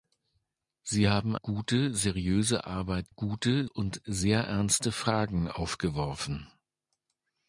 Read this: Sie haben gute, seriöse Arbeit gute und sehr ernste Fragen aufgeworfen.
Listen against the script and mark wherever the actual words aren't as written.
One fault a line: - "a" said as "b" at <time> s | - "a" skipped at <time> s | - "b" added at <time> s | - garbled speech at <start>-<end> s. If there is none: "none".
none